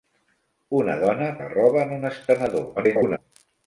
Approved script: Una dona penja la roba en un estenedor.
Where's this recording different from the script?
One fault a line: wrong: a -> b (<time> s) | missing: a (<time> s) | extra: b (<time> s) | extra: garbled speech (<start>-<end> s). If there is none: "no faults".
missing: penja (1.3 s)
extra: garbled speech (2.8-3.2 s)